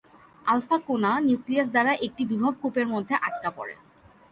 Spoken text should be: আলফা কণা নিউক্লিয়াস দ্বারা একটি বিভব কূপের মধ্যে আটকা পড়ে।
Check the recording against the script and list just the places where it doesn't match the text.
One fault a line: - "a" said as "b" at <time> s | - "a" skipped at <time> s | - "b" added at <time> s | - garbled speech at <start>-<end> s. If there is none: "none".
none